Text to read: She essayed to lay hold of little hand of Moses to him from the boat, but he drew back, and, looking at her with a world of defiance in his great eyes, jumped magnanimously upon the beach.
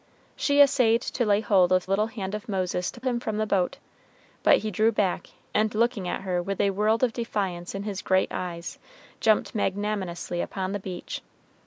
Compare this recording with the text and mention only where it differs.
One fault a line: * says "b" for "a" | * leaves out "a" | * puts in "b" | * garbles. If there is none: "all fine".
all fine